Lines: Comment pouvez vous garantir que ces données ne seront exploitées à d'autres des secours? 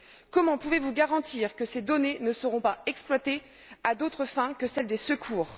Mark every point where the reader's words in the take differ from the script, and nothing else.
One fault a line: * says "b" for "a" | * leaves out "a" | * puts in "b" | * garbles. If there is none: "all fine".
* puts in "pas"
* puts in "fins que celles"